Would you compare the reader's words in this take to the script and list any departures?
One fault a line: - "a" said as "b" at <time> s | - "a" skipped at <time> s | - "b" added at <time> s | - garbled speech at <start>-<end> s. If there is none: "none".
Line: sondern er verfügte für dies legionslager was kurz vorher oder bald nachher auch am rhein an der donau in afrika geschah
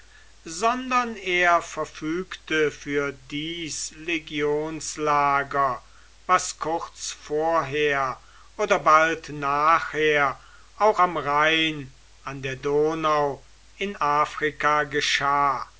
none